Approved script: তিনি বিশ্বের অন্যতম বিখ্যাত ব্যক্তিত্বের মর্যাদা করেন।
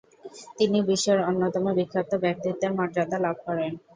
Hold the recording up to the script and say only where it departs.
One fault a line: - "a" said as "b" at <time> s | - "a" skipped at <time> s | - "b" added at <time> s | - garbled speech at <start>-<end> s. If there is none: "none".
- "লাভ" added at 3.2 s